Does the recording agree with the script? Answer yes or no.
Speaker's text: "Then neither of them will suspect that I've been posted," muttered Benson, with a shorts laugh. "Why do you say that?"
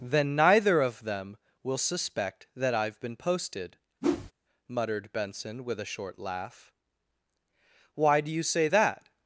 no